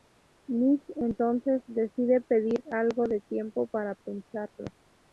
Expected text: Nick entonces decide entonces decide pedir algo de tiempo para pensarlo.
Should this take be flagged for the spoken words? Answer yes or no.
yes